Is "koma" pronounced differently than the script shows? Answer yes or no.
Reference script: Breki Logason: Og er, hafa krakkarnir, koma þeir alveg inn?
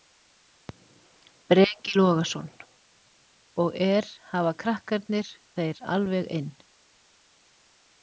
yes